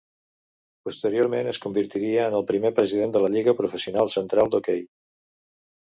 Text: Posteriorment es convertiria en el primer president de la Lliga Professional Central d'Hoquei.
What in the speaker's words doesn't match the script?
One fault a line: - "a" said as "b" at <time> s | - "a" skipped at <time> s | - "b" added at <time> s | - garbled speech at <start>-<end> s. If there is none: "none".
none